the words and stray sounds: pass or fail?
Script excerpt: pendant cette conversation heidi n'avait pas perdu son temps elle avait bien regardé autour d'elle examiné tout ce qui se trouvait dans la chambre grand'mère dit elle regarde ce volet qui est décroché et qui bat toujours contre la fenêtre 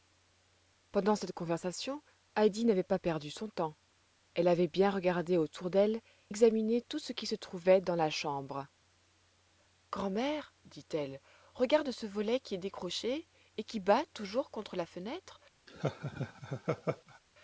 fail